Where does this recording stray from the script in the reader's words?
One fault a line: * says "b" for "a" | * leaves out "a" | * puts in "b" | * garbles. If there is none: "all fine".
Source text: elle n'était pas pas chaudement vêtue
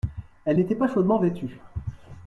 * leaves out "pas"